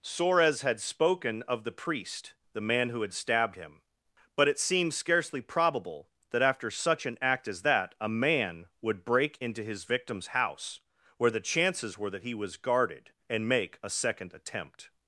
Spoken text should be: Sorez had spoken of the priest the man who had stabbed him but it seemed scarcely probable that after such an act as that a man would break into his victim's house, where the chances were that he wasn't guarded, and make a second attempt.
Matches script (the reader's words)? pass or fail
fail